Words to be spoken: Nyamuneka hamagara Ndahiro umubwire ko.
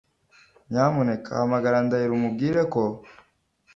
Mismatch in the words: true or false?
false